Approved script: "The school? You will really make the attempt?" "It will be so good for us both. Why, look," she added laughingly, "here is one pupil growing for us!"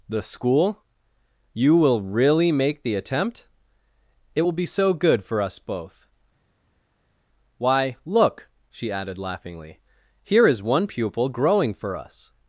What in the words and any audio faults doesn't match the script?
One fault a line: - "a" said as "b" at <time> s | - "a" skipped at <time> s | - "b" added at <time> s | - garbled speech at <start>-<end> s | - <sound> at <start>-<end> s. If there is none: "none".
none